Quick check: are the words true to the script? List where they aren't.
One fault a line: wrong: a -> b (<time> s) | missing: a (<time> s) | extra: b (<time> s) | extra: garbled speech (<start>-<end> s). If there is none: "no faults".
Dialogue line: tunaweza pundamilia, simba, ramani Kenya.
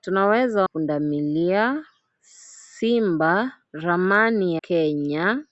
no faults